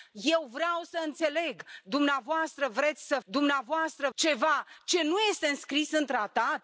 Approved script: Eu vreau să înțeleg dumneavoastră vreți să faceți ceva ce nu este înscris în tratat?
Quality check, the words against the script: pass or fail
fail